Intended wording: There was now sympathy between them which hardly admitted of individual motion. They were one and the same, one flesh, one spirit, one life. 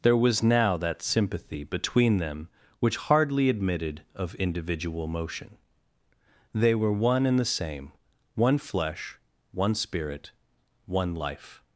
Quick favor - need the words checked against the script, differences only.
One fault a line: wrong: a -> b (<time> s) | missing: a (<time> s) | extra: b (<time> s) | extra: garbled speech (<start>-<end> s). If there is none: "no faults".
extra: that (0.8 s)